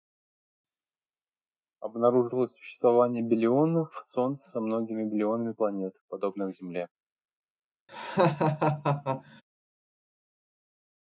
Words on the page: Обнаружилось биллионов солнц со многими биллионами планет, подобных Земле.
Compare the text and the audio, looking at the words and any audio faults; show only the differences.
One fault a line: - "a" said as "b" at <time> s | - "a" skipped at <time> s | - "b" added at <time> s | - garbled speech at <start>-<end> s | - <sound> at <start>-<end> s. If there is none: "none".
- "существование" added at 2.5 s
- laugh at 7.9-9.4 s